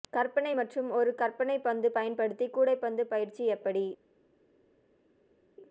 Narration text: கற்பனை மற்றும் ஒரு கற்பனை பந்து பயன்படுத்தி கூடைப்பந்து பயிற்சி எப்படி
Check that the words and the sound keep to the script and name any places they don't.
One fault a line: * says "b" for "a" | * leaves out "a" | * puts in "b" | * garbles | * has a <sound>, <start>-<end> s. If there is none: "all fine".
all fine